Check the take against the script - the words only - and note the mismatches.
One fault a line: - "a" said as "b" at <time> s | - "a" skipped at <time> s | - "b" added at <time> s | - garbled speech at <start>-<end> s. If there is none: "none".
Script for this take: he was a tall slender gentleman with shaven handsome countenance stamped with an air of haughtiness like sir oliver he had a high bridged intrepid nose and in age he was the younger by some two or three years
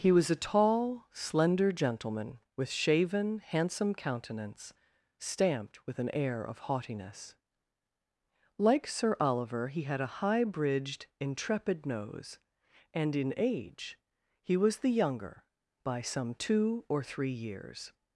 none